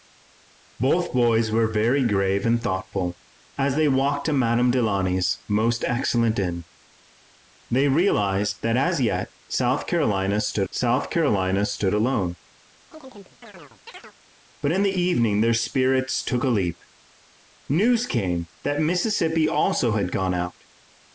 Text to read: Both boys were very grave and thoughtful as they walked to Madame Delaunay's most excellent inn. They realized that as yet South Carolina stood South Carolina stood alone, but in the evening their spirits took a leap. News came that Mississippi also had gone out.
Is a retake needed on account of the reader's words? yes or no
no